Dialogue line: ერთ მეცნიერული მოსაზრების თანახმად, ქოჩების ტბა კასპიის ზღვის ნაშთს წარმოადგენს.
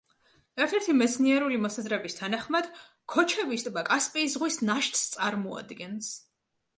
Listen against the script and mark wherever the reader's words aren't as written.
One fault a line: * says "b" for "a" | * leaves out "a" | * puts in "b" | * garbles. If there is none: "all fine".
* puts in "ერთი"